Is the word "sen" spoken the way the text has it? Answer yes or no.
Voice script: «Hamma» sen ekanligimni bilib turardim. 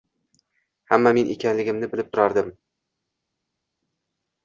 no